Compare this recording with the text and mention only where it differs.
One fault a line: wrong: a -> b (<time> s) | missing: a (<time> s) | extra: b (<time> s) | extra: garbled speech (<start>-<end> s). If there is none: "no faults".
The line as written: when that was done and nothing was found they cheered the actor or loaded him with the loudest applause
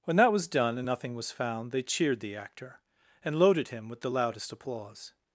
wrong: or -> and (3.2 s)